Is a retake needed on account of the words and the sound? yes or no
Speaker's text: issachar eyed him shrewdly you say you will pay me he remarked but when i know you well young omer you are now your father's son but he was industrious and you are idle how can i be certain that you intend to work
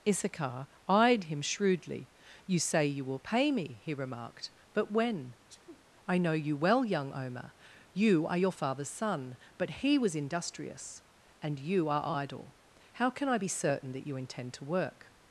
yes